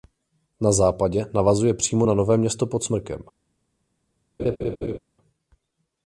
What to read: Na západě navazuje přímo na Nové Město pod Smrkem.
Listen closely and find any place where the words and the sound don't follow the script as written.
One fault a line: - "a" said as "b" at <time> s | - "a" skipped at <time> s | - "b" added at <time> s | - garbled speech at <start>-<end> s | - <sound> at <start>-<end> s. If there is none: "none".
- laugh at 4.4-5.0 s